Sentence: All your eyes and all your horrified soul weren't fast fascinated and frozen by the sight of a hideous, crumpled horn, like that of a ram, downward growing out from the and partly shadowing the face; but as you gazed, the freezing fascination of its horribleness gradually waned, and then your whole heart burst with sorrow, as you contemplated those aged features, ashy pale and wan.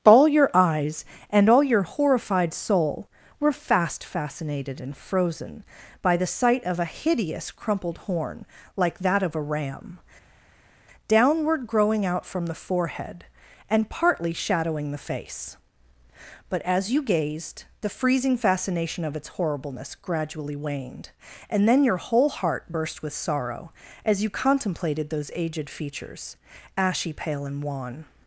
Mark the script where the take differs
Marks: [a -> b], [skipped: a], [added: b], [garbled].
All your eyes and all your horrified soul [weren't -> were] fast fascinated and frozen by the sight of a hideous, crumpled horn, like that of a ram, downward growing out from the [added: forehead] and partly shadowing the face; but as you gazed, the freezing fascination of its horribleness gradually waned, and then your whole heart burst with sorrow, as you contemplated those aged features, ashy pale and wan.